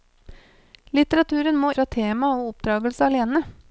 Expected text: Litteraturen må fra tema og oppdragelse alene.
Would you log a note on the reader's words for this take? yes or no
no